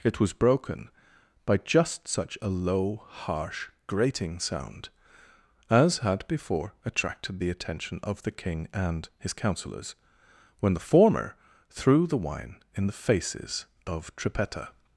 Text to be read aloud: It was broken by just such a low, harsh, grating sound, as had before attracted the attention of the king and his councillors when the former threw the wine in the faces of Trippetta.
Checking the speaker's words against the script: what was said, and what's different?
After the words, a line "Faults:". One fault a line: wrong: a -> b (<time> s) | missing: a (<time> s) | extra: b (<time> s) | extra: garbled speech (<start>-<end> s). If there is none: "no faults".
It was broken by just such a low, harsh, grating sound, as had before attracted the attention of the king and his councillors when the former threw the wine in the faces of Trippetta.
Faults:
no faults